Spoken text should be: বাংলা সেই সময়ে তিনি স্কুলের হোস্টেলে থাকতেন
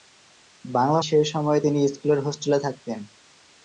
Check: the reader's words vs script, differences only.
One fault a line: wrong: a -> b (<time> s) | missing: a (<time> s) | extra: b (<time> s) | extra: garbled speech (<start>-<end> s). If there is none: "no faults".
no faults